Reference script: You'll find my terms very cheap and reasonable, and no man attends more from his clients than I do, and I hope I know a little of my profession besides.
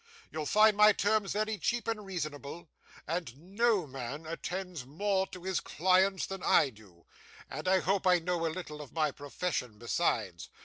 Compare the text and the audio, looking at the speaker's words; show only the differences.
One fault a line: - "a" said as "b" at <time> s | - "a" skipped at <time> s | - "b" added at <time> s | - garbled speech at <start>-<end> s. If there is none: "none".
- "from" said as "to" at 5.3 s